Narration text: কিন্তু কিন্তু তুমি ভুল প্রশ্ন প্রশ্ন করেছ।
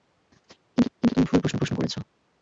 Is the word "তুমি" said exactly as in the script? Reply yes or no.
yes